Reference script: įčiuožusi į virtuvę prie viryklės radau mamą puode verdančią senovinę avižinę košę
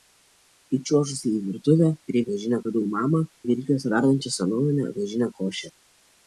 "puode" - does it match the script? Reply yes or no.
no